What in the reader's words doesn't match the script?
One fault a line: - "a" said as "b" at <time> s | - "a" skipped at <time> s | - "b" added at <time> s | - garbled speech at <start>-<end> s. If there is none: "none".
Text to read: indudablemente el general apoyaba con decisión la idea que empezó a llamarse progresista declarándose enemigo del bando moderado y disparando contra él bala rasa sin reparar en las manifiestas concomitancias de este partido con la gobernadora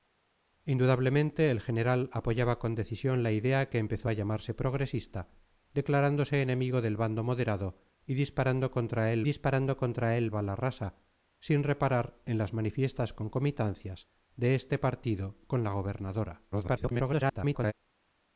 - "disparando contra él" added at 9.2 s
- garbled speech at 16.5-17.7 s